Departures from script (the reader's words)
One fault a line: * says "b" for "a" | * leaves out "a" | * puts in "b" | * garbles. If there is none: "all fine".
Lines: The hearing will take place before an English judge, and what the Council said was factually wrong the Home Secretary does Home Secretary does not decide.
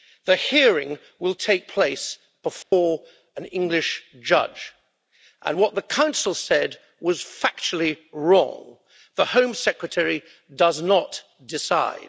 * leaves out "Home Secretary does"